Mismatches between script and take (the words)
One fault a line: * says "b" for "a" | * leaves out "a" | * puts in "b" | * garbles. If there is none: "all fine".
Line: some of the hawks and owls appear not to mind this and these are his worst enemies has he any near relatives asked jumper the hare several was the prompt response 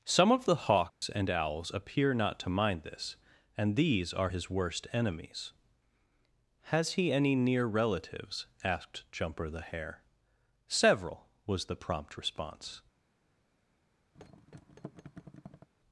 all fine